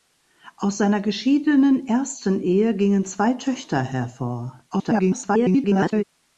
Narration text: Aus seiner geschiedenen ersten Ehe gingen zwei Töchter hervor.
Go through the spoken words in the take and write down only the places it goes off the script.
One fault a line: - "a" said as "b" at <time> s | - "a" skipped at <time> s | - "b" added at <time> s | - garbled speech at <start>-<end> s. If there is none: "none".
- garbled speech at 4.7-6.0 s